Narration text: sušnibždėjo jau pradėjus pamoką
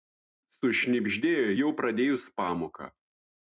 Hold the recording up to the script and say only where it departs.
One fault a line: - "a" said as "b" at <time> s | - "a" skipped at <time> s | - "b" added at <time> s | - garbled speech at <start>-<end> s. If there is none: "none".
none